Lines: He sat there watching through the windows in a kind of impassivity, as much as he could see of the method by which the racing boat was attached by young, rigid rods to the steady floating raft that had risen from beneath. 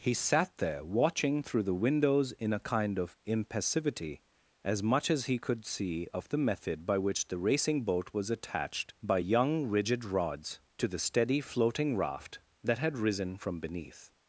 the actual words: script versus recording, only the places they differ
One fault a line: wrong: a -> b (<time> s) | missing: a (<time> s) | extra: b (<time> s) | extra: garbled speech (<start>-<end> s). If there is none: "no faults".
no faults